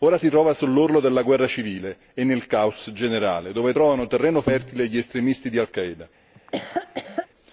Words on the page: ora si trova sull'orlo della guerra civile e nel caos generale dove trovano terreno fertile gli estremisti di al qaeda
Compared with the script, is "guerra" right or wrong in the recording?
right